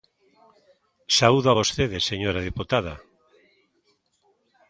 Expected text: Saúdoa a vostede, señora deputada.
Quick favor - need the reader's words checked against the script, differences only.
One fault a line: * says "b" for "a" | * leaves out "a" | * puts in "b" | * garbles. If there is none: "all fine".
all fine